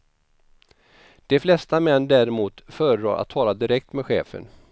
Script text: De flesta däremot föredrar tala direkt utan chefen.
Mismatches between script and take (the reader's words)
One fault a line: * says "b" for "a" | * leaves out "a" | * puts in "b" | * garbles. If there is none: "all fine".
* puts in "män"
* puts in "att"
* says "med" for "utan"